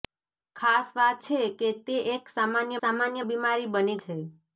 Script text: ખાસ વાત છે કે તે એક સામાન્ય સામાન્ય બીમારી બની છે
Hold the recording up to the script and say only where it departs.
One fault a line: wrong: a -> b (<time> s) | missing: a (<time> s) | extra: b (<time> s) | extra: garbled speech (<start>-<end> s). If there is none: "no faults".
no faults